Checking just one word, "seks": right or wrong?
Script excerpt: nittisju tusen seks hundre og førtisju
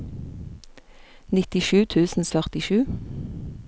wrong